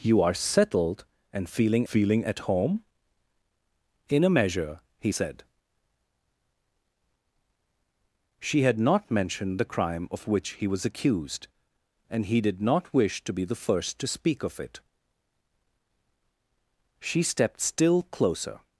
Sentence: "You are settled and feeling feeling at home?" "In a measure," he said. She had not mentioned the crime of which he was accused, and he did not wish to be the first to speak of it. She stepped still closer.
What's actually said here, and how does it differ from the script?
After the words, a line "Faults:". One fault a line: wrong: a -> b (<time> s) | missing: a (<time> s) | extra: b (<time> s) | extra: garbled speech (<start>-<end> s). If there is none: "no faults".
"You are settled and feeling feeling at home?" "In a measure," he said. She had not mentioned the crime of which he was accused, and he did not wish to be the first to speak of it. She stepped still closer.
Faults:
no faults